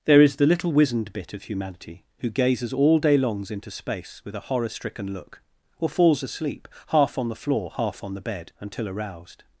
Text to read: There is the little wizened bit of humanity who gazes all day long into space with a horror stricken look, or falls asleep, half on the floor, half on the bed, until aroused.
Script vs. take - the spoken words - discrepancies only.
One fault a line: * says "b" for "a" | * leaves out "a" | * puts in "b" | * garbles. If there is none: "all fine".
* says "longs" for "long"